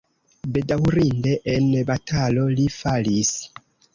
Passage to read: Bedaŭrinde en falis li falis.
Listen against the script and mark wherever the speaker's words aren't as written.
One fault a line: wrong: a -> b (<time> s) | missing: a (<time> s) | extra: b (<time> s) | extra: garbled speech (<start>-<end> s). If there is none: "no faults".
wrong: falis -> batalo (1.9 s)